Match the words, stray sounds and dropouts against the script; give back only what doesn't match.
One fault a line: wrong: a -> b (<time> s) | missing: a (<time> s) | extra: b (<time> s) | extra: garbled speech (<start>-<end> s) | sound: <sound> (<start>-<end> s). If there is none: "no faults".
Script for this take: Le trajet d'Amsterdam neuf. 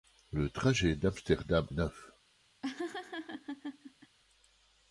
sound: laugh (2.6-4.2 s)